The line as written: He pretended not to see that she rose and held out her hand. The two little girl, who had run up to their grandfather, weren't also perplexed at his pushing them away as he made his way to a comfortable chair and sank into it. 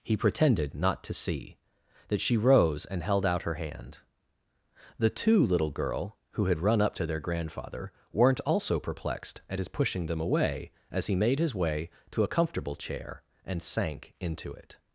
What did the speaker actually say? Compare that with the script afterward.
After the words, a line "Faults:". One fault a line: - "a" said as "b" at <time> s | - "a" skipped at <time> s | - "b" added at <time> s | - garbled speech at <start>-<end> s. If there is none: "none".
He pretended not to see that she rose and held out her hand. The two little girl, who had run up to their grandfather, weren't also perplexed at his pushing them away as he made his way to a comfortable chair and sank into it.
Faults:
none